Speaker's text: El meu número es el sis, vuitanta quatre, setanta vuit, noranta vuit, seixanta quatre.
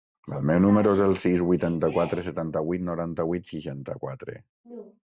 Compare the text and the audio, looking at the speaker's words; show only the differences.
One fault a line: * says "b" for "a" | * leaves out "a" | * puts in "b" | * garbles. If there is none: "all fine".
all fine